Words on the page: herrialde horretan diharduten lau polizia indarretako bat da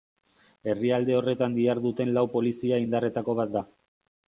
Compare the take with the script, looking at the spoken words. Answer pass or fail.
pass